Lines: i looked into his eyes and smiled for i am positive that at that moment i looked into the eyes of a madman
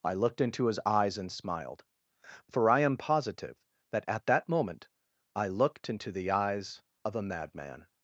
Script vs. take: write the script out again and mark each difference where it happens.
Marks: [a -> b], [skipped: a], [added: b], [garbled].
i looked into his eyes and smiled for i am positive that at that moment i looked into the eyes of a madman